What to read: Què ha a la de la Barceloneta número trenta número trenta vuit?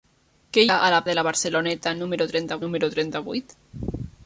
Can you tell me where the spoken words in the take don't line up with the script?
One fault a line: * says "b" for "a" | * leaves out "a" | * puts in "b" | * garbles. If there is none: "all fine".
all fine